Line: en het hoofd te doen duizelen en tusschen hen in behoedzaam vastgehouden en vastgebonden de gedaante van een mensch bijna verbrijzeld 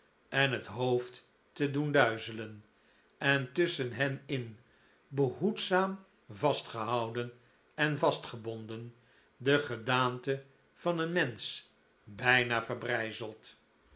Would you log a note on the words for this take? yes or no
no